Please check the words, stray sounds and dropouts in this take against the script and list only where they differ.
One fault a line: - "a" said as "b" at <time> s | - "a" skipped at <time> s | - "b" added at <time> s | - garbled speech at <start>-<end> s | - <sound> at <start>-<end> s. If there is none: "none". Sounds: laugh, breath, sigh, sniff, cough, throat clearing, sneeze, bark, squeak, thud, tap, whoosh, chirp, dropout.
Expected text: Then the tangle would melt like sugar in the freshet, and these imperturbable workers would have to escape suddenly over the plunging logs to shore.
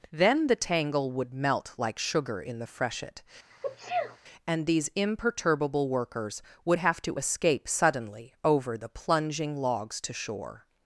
- sneeze at 3.5-4.2 s